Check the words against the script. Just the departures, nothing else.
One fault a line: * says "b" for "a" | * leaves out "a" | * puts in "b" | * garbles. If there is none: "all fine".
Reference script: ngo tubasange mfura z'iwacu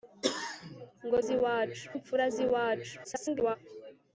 * says "z'iwacu" for "tubasange"
* garbles